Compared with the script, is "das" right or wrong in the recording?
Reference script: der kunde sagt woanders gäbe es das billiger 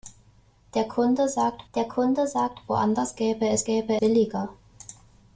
wrong